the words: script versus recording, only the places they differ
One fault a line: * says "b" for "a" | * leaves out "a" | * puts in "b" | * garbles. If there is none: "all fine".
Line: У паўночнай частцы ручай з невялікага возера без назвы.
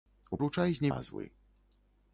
* leaves out "паўночнай частцы"
* leaves out "невялікага возера без"